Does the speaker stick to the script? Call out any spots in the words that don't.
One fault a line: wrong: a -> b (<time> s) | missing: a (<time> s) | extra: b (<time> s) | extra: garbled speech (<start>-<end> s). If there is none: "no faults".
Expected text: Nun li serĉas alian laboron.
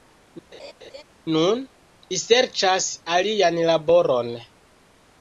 no faults